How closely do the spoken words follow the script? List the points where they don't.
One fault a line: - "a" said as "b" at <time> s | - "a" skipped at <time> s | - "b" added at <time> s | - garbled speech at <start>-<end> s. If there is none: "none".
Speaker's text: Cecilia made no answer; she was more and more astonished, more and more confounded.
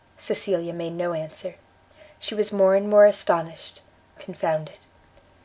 - "more and more" skipped at 3.8 s